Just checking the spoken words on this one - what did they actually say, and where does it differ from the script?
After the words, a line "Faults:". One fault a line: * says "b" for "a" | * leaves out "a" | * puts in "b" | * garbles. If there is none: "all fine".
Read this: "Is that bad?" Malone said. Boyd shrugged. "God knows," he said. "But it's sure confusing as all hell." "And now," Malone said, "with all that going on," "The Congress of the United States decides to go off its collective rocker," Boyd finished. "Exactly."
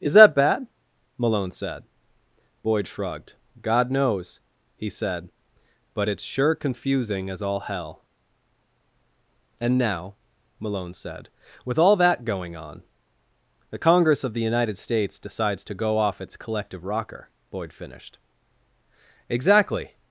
"Is that bad?" Malone said. Boyd shrugged. "God knows," he said. "But it's sure confusing as all hell." "And now," Malone said, "with all that going on," "The Congress of the United States decides to go off its collective rocker," Boyd finished. "Exactly."
Faults:
all fine